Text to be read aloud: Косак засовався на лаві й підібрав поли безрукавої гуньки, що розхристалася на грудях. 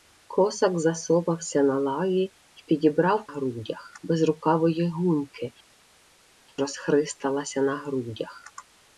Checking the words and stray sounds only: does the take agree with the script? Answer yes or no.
no